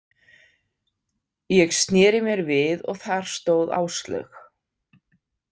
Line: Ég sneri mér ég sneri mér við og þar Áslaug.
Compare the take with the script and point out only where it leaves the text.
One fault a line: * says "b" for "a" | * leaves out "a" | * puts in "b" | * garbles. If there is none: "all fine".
* leaves out "ég sneri mér"
* puts in "stóð"